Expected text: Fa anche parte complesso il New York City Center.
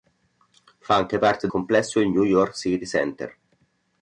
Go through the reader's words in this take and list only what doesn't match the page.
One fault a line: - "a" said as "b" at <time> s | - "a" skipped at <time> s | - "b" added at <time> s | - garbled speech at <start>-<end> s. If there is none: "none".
none